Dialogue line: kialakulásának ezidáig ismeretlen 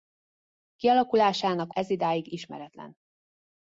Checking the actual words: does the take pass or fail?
pass